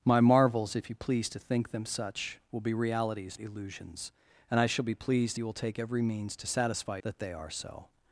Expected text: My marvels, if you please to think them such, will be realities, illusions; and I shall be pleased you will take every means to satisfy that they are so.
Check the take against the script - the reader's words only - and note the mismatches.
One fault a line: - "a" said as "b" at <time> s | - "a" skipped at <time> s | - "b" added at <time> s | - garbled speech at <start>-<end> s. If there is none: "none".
none